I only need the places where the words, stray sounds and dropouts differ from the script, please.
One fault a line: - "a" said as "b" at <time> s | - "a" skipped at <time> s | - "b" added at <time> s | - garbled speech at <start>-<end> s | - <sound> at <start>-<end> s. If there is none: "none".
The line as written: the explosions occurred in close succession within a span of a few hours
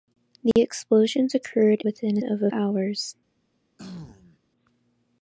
- dropout at 0.5-0.6 s
- "in close succession" skipped at 1.8 s
- "span" skipped at 2.2 s
- "few" skipped at 2.5 s
- throat clearing at 3.8-4.4 s